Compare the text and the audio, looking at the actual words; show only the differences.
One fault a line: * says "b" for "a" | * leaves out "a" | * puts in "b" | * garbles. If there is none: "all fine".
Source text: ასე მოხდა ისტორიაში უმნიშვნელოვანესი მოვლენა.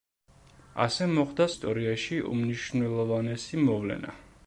all fine